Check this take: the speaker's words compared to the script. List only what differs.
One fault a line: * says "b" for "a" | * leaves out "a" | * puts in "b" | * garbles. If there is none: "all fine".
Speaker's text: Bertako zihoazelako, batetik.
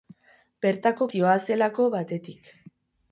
all fine